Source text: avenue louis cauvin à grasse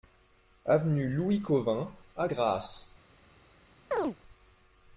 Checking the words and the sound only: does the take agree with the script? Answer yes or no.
no